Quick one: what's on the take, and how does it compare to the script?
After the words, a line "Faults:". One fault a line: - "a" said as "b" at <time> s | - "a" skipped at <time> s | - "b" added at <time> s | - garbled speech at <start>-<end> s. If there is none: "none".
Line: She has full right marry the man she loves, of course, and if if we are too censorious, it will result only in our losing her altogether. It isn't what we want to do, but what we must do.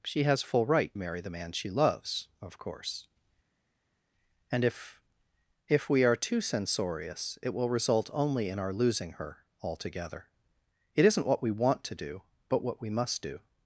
She has full right marry the man she loves, of course, and if if we are too censorious, it will result only in our losing her altogether. It isn't what we want to do, but what we must do.
Faults:
none